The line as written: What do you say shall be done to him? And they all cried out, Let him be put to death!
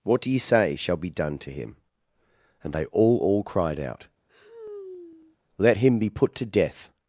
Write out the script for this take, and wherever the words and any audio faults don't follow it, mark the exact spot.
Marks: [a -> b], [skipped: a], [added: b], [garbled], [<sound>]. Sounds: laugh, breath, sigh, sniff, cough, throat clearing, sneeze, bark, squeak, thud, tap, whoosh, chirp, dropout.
What do you say shall be done to him? And they all [added: all] cried out, [sigh] Let him be put to death!